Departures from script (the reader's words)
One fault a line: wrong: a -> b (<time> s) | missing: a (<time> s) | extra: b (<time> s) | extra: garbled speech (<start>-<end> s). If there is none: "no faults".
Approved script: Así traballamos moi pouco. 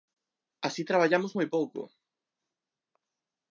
no faults